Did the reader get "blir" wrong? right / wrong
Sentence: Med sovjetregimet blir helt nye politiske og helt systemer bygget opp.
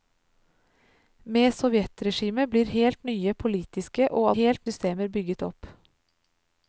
right